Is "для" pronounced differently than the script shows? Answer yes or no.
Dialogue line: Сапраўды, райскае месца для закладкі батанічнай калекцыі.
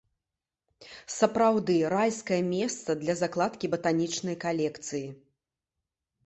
no